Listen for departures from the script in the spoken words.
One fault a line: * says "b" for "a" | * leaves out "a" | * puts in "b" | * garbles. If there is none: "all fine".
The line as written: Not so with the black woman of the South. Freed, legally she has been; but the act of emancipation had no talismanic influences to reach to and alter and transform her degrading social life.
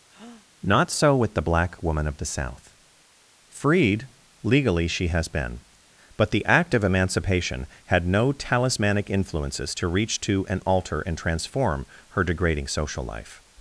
all fine